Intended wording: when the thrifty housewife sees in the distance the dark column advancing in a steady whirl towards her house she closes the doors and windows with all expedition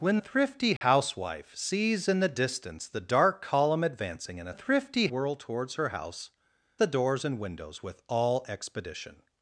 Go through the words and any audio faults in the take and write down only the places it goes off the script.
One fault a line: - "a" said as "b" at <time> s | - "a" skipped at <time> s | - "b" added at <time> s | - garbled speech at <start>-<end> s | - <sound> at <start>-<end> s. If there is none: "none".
- "the" skipped at 0.2 s
- dropout at 0.8-0.8 s
- "steady" said as "thrifty" at 4.5 s
- "she closes" skipped at 6.3 s